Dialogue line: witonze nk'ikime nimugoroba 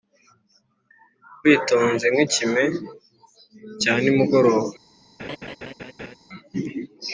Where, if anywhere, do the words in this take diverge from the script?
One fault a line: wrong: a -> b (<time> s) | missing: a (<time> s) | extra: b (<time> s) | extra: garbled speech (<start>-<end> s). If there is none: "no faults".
extra: cya (3.8 s)